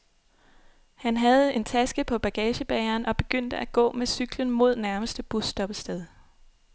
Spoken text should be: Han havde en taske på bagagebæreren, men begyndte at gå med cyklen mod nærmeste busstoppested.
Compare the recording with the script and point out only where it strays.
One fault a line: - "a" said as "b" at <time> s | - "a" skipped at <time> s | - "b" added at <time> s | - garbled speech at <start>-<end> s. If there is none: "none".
- "men" said as "og" at 3.0 s